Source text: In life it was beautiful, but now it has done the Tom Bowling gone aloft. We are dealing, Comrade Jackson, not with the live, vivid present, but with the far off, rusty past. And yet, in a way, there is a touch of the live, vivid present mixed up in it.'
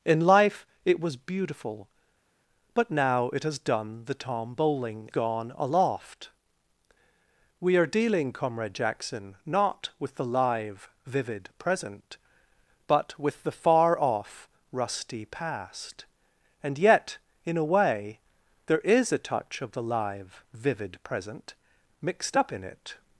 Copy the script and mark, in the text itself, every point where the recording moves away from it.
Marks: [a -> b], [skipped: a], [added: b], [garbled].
In life it was beautiful, but now it has done the Tom Bowling gone aloft. We are dealing, Comrade Jackson, not with the live, vivid present, but with the far off, rusty past. And yet, in a way, there is a touch of the live, vivid present mixed up in it.'